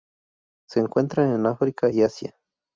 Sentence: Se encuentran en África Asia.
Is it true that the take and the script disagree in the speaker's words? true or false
true